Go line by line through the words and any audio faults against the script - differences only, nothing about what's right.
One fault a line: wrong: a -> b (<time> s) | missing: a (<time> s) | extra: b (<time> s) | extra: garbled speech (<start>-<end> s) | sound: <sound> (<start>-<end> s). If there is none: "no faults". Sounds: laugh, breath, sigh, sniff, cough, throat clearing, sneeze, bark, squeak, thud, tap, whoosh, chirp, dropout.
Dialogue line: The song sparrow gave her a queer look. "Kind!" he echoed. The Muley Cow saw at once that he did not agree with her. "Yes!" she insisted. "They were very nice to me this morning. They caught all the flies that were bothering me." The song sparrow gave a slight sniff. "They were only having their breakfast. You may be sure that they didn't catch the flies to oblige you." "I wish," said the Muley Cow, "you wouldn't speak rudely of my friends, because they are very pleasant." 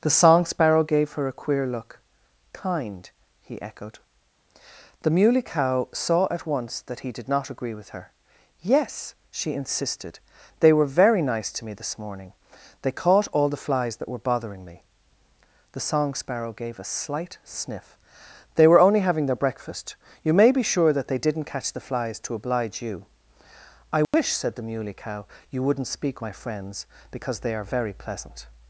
sound: dropout (24.0-24.1 s)
missing: rudely of (26.2 s)